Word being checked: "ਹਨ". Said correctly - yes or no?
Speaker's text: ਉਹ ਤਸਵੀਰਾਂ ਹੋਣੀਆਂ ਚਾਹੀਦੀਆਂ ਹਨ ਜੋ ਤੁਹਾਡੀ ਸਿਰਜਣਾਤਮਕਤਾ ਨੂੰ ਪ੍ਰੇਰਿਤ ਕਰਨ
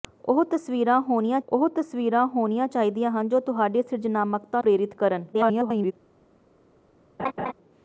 yes